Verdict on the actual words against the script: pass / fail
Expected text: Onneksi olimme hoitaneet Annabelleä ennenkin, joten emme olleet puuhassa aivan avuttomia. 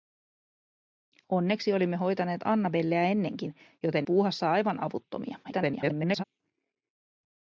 fail